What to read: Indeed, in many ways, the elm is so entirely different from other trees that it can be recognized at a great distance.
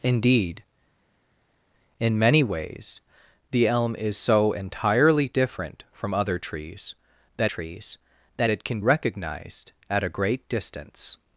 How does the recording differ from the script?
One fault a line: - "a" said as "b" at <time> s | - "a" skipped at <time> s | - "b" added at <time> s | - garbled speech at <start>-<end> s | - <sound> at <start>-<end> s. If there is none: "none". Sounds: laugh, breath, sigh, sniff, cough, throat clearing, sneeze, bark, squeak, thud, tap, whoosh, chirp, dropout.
- "trees that" added at 7.4 s
- "be" skipped at 8.8 s